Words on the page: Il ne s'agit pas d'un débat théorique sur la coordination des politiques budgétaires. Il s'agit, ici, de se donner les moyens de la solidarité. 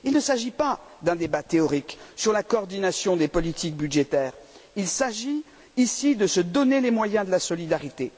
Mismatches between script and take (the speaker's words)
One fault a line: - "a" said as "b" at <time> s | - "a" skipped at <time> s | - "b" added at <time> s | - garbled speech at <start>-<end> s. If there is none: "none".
none